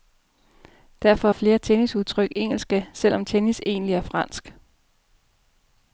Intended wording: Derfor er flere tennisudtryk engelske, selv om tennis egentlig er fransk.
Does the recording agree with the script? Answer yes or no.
yes